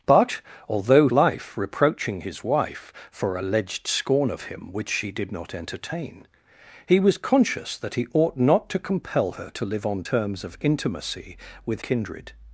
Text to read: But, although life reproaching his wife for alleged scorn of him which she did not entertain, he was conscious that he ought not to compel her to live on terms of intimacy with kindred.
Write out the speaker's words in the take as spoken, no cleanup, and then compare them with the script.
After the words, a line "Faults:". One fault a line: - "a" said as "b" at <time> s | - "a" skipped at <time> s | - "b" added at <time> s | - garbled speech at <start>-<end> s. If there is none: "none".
But, although life reproaching his wife for alleged scorn of him which she did not entertain, he was conscious that he ought not to compel her to live on terms of intimacy with kindred.
Faults:
none